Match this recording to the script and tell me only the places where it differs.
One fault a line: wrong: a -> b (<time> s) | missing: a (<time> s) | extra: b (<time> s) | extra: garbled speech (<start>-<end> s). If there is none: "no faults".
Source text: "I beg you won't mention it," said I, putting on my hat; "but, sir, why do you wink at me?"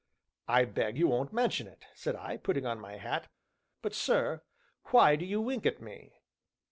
no faults